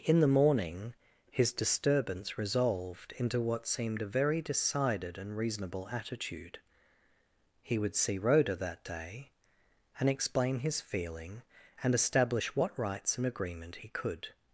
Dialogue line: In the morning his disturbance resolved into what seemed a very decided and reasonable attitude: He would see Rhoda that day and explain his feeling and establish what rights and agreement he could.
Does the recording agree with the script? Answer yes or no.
yes